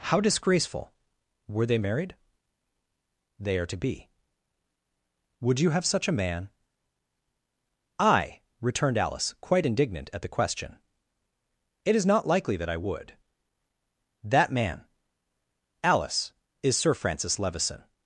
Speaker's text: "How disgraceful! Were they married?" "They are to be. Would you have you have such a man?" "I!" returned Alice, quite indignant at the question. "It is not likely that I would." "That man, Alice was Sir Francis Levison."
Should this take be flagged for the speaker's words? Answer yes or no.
yes